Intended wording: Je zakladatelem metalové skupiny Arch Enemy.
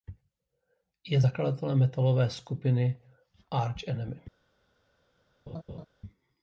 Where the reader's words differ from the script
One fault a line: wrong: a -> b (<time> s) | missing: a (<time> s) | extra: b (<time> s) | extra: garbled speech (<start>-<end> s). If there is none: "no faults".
no faults